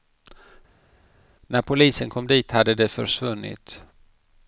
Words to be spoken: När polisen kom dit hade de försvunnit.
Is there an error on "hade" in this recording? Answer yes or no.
no